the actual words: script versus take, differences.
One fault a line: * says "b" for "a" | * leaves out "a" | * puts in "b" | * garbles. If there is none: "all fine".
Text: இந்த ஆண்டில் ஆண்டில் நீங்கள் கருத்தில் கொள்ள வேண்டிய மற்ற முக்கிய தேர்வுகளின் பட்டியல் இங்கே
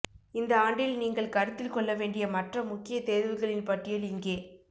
* leaves out "ஆண்டில்"